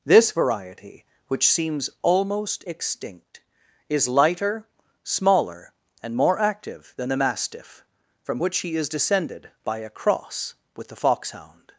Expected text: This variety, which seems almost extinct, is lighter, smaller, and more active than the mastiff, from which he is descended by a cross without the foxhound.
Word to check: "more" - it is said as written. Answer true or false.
true